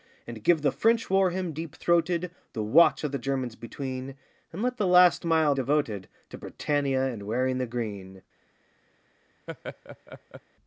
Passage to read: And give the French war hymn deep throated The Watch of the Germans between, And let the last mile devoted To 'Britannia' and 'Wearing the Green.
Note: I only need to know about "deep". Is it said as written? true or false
true